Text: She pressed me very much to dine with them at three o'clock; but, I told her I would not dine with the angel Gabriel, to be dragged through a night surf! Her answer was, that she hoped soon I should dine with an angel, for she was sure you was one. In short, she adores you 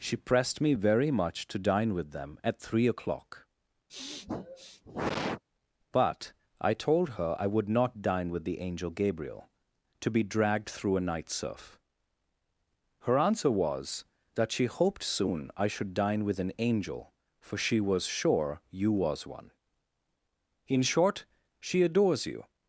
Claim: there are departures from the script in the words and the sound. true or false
true